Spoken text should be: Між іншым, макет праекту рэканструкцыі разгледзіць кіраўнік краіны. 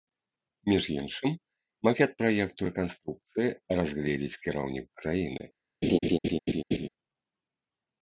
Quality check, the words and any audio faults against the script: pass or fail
fail